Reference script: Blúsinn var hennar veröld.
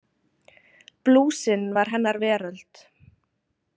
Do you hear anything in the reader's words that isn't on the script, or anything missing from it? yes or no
no